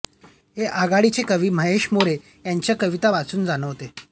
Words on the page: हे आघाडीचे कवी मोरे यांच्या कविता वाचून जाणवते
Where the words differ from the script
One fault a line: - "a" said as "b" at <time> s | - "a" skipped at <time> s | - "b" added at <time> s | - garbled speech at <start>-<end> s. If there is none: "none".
- "महेश" added at 1.5 s